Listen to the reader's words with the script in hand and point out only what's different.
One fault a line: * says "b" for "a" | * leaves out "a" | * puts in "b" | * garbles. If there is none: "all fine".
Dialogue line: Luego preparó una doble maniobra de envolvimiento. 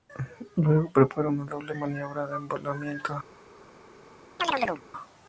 all fine